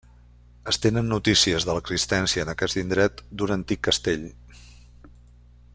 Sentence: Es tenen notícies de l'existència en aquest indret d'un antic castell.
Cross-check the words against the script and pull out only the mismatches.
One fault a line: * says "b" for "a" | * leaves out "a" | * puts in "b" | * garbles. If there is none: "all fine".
all fine